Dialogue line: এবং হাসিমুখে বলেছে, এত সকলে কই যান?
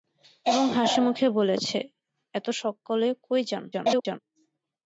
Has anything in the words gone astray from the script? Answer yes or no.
yes